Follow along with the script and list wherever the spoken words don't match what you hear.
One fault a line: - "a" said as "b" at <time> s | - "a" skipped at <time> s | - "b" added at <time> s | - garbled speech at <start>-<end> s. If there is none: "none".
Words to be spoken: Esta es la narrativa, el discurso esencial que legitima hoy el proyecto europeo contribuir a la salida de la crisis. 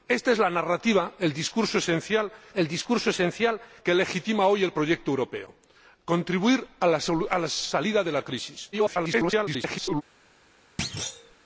- "el discurso esencial" added at 2.5 s
- garbled speech at 8.7-10.0 s